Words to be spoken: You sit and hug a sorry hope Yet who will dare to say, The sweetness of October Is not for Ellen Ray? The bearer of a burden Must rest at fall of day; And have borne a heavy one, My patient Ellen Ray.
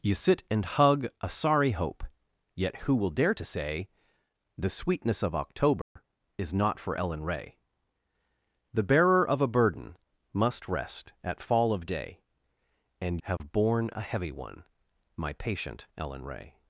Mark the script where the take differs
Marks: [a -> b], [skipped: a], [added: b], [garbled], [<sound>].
You sit and hug a sorry hope Yet who will dare to say, The sweetness of October [dropout] Is not for Ellen Ray? The bearer of a burden Must rest at fall of day; And have [dropout] borne a heavy one, My patient Ellen Ray.